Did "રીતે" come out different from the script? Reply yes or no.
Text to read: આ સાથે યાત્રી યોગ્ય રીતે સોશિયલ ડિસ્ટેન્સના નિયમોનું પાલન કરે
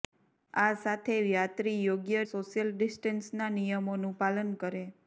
yes